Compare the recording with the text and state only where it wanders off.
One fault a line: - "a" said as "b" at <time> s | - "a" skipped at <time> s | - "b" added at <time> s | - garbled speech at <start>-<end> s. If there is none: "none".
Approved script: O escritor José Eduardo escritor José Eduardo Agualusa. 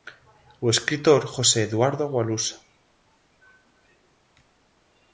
- "escritor José Eduardo" skipped at 2.0 s